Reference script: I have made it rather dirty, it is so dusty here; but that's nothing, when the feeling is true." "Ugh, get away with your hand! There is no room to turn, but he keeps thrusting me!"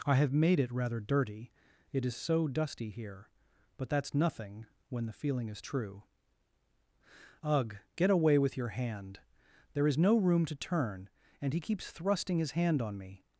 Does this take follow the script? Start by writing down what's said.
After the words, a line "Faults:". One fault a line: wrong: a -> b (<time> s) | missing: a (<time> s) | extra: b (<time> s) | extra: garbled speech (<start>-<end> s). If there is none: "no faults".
I have made it rather dirty, it is so dusty here; but that's nothing, when the feeling is true." "Ugh, get away with your hand! There is no room to turn, and he keeps thrusting his hand on me!"
Faults:
wrong: but -> and (11.4 s)
extra: his hand on (12.4 s)